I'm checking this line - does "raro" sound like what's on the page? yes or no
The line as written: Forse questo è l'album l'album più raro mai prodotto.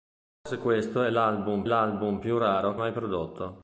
yes